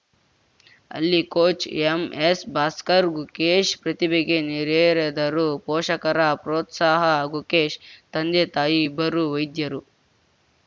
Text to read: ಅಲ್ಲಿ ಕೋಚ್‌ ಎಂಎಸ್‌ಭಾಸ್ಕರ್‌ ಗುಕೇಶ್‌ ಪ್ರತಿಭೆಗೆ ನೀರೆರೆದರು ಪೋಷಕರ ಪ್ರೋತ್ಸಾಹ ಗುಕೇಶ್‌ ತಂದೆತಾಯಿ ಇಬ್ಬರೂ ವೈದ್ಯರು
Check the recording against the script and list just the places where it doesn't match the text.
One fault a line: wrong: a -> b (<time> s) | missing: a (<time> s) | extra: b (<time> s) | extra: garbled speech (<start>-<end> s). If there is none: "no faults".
no faults